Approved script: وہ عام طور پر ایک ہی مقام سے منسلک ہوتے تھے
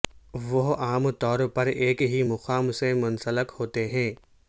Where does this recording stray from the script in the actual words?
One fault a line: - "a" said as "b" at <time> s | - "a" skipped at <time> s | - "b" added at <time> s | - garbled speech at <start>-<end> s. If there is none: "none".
- "تھے" said as "ہیں" at 3.9 s